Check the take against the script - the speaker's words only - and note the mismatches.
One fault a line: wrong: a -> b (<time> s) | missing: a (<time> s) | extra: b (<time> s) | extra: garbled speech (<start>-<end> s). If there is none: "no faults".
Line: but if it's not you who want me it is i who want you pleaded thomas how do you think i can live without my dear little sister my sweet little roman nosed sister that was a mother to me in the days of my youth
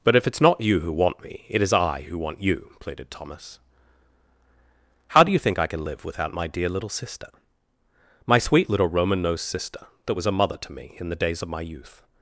no faults